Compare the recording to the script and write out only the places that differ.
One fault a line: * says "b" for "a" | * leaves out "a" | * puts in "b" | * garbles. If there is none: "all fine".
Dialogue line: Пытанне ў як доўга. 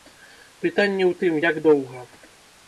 * puts in "тым"